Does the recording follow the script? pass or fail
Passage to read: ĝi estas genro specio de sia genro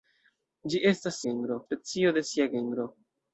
pass